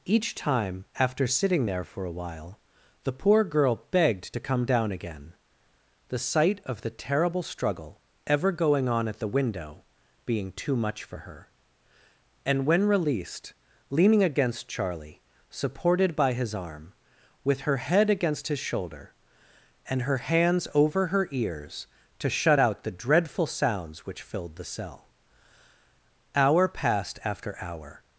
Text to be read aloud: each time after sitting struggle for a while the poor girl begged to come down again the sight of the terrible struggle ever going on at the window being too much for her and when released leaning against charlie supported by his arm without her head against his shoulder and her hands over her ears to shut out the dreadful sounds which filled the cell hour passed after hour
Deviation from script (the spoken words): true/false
true